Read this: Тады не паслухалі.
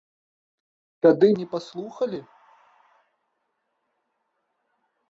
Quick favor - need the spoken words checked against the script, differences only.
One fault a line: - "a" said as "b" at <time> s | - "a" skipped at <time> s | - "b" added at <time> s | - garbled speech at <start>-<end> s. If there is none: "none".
none